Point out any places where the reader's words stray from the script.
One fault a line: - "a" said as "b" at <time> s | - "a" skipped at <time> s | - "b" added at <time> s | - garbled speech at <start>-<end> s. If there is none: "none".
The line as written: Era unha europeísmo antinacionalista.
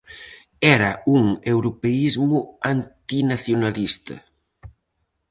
- "unha" said as "un" at 1.1 s